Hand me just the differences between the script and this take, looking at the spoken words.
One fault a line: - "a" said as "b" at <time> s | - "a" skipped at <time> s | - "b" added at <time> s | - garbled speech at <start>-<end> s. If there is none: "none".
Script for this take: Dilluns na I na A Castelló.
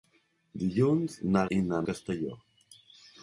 none